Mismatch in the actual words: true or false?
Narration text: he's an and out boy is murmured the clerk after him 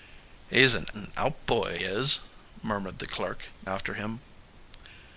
false